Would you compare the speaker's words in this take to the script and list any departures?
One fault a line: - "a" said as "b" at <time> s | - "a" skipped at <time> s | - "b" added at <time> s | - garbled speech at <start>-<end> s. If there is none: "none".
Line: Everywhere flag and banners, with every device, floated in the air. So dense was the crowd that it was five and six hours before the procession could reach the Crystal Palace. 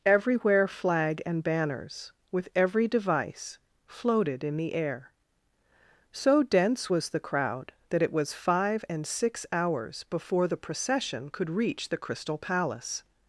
none